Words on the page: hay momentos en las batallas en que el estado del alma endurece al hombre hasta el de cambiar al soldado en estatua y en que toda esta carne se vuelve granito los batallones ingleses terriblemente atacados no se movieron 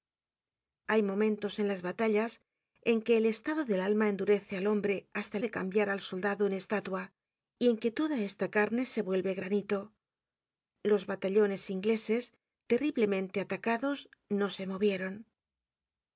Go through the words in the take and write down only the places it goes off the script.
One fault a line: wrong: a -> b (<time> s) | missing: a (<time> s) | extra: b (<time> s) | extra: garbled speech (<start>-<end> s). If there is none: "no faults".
no faults